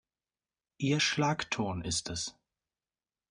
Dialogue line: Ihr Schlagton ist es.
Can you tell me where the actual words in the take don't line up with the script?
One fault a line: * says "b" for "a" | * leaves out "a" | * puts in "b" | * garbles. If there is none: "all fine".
all fine